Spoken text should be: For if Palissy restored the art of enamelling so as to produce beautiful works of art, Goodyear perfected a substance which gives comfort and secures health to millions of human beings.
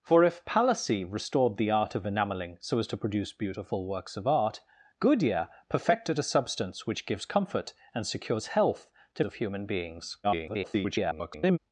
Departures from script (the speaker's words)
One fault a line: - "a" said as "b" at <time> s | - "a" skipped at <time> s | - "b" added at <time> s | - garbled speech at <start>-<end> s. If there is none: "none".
- "millions" skipped at 9.2 s
- garbled speech at 10.2-11.6 s